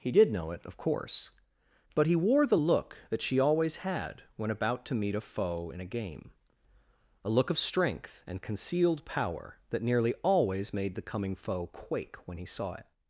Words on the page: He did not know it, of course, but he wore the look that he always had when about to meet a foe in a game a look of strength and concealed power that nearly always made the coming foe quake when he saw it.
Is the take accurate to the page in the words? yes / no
no